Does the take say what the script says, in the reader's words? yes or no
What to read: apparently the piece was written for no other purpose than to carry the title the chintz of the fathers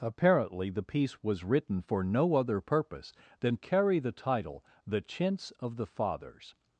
no